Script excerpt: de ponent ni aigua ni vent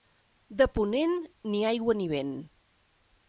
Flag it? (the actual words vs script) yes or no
no